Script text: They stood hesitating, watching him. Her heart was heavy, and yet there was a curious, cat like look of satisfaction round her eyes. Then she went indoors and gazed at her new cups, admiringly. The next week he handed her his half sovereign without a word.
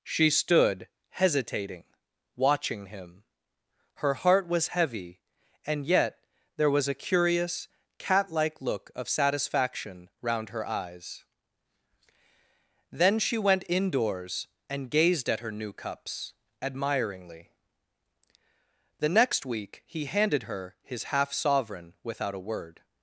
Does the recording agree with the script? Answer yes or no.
no